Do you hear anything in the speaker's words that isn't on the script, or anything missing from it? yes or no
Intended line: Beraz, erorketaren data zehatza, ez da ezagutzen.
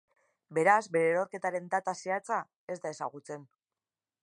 yes